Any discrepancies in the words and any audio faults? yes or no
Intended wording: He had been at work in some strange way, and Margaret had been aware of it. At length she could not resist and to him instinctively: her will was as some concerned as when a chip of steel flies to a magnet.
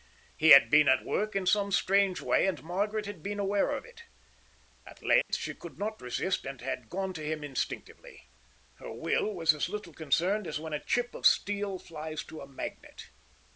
yes